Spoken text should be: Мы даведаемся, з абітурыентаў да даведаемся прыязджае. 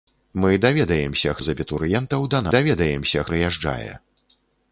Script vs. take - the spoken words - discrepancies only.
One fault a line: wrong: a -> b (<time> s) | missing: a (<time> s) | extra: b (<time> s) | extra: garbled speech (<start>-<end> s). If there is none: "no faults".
no faults